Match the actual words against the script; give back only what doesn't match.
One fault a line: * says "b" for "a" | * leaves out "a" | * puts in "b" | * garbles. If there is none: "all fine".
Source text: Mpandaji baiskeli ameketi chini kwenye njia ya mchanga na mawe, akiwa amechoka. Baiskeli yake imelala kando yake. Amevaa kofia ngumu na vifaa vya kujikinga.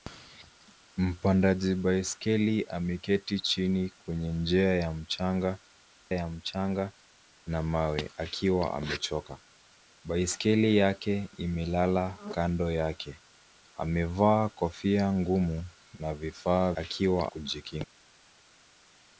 * puts in "ya mchanga"
* says "akiwa" for "vya"